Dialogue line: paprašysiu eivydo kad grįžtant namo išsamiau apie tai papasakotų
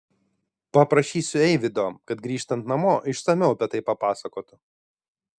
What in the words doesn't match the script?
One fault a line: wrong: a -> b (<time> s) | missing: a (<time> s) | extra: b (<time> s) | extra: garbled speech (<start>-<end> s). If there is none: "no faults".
no faults